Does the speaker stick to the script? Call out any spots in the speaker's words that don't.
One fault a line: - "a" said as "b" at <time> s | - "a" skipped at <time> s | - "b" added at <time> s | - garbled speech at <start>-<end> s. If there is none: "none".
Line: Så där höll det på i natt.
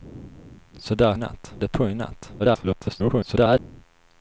- "höll" said as "natt" at 1.2 s
- garbled speech at 2.4-3.6 s